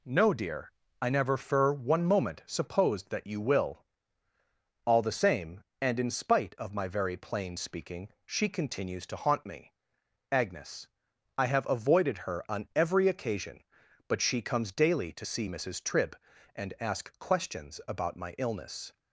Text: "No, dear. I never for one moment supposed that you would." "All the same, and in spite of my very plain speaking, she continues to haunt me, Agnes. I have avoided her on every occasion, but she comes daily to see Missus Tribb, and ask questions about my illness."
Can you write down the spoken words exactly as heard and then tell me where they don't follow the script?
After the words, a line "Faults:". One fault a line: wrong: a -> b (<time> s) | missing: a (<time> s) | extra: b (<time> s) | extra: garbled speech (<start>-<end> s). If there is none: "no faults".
"No, dear. I never for one moment supposed that you will." "All the same, and in spite of my very plain speaking, she continues to haunt me, Agnes. I have avoided her on every occasion, but she comes daily to see Missus Tribb, and ask questions about my illness."
Faults:
wrong: would -> will (3.4 s)